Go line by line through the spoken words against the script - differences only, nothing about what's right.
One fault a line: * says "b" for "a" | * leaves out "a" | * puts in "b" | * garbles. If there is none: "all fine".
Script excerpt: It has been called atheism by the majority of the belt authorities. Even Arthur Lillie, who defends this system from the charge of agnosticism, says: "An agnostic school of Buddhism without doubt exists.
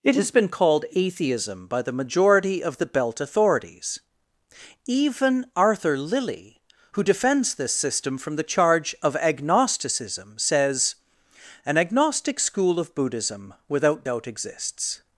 all fine